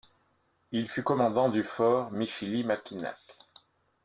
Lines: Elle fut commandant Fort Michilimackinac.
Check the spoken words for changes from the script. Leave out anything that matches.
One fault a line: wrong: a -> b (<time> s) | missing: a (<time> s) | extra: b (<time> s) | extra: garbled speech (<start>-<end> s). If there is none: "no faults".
wrong: Elle -> Il (0.7 s)
extra: du (1.5 s)